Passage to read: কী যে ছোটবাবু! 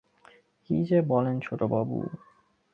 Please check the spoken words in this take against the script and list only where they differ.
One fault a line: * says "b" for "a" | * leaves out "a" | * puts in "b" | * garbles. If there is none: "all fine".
* puts in "বলেন"